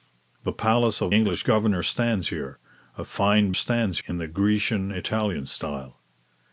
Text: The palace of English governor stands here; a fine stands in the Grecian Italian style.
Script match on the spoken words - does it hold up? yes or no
yes